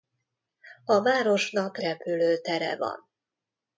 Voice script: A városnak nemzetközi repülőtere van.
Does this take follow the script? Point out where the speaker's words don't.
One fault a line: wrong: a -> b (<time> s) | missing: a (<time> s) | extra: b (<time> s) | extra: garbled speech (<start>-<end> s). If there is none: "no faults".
missing: nemzetközi (1.8 s)